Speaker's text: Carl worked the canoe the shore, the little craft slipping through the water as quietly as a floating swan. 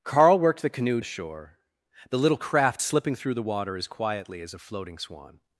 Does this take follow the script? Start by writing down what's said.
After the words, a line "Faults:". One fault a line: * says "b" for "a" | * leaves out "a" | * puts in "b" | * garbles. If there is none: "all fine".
Carl worked the canoe the shore, the little craft slipping through the water as quietly as a floating swan.
Faults:
all fine